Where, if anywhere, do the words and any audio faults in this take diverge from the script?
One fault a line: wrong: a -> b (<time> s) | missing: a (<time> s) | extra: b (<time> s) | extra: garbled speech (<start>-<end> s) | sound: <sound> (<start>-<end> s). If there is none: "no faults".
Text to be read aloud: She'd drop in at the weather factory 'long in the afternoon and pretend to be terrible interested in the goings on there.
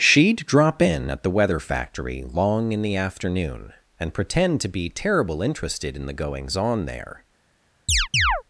sound: chirp (7.9-8.4 s)